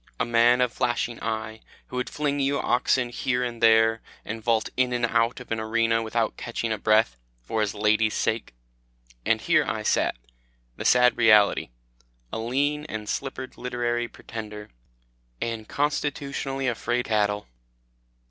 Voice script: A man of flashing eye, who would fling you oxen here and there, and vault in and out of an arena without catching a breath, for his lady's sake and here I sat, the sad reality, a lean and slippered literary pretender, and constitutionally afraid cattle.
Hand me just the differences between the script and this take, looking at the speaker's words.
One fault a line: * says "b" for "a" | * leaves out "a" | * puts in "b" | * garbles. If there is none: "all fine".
all fine